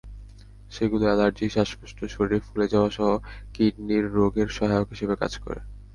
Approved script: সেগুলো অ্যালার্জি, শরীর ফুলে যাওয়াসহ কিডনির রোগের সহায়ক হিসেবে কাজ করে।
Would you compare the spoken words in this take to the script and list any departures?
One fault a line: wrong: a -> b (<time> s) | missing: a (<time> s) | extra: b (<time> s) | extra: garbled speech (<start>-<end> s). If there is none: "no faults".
extra: শ্বাসকষ্ট (1.5 s)